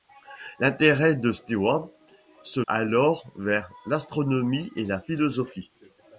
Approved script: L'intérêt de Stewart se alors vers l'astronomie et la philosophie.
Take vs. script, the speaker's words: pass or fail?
pass